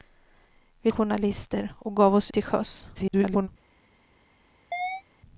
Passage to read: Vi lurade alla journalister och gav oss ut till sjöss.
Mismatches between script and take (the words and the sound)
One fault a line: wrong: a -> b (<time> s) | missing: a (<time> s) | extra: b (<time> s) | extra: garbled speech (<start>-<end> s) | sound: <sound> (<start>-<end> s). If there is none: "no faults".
missing: lurade alla (0.9 s)
missing: ut (2.3 s)
extra: garbled speech (2.9-3.5 s)
sound: chirp (4.7-5.0 s)